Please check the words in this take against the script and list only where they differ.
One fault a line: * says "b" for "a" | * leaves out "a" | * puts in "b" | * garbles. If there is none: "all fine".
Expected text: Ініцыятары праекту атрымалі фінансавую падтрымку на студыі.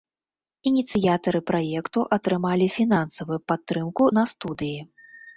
all fine